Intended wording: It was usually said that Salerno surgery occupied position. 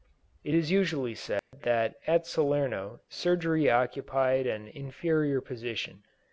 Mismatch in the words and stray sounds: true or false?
true